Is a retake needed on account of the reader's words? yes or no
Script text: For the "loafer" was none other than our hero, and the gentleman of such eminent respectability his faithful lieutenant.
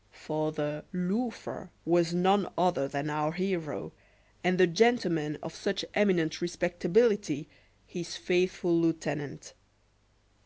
no